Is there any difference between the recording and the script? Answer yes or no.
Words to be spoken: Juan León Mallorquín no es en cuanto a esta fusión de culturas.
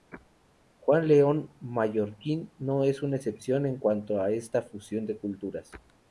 yes